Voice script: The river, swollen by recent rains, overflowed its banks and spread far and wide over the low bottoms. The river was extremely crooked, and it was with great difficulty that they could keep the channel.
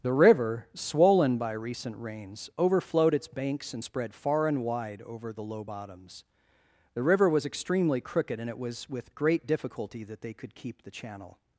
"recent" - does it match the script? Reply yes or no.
yes